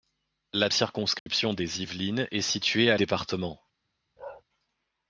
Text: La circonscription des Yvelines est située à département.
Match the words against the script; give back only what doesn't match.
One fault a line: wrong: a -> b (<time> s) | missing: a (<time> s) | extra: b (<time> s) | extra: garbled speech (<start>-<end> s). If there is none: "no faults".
no faults